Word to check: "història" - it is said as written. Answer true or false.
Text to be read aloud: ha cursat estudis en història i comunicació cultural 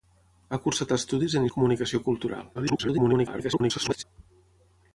false